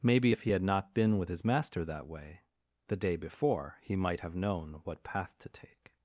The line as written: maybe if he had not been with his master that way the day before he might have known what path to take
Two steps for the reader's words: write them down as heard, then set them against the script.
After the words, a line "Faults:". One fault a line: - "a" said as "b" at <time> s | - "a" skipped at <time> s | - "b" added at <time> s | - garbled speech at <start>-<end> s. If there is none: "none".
maybe if he had not been with his master that way the day before he might have known what path to take
Faults:
none